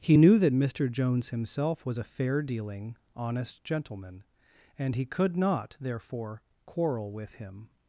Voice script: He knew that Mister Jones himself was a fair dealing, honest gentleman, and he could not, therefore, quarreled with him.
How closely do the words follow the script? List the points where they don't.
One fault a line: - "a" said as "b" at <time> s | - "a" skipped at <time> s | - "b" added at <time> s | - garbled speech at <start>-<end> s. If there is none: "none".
- "quarreled" said as "quarrel" at 6.6 s